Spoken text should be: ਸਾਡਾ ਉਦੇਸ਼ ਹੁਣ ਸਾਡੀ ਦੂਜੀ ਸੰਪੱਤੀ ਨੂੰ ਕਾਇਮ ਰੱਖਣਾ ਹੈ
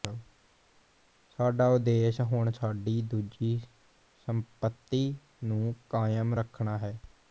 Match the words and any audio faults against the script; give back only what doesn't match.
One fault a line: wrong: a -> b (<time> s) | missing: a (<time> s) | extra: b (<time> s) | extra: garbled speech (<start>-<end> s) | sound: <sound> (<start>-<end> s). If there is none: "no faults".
no faults